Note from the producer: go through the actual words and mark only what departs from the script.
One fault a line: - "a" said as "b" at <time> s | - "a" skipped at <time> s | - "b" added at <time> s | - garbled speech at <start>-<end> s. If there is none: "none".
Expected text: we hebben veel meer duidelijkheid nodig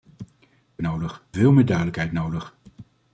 - "hebben" said as "nodig" at 0.8 s